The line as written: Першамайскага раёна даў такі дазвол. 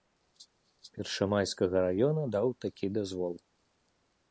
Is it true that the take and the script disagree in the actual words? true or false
false